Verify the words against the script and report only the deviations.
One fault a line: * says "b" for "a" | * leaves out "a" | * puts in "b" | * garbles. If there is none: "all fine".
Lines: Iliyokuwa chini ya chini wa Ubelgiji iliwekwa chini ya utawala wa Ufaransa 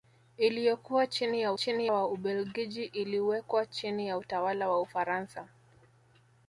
all fine